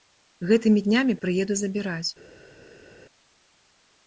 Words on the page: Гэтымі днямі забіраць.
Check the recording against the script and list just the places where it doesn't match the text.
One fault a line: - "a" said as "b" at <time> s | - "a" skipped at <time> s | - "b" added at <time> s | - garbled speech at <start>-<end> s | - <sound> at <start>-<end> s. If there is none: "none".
- "прыеду" added at 1.2 s